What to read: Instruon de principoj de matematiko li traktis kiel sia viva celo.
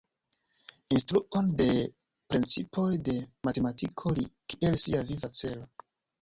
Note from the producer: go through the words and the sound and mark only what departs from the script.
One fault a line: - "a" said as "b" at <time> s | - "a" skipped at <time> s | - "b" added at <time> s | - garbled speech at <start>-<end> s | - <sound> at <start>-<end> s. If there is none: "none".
- "traktis" skipped at 4.3 s